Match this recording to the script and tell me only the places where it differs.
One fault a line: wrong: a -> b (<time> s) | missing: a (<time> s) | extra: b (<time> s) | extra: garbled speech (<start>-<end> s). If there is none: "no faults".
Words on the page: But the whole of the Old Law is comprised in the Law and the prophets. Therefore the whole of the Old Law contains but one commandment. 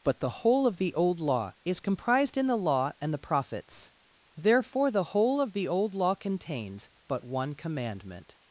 no faults